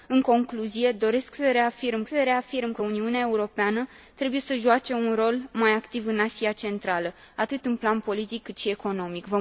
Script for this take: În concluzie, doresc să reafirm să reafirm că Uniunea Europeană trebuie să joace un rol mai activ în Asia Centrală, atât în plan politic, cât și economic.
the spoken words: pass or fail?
pass